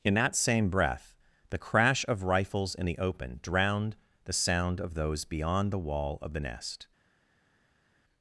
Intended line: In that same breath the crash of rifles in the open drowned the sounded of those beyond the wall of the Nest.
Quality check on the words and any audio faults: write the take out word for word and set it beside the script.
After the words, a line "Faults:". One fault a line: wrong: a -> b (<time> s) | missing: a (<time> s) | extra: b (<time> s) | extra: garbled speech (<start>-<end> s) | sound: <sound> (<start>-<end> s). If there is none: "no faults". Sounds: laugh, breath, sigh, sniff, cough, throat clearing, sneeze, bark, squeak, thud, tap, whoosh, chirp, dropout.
In that same breath the crash of rifles in the open drowned the sound of those beyond the wall of the Nest.
Faults:
wrong: sounded -> sound (4.3 s)